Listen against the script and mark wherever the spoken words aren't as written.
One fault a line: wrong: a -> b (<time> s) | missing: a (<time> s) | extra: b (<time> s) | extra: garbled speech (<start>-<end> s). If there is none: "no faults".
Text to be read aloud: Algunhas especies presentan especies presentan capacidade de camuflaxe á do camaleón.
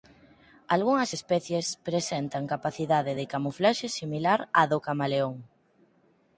missing: especies presentan (2.5 s)
extra: similar (4.0 s)